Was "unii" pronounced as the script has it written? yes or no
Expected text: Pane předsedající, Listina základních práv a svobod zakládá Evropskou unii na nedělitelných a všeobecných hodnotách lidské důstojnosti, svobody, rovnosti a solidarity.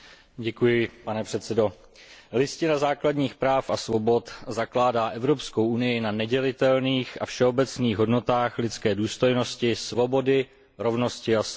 yes